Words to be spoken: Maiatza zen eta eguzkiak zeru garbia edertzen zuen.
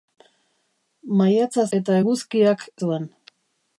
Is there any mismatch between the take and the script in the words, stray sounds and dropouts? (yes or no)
yes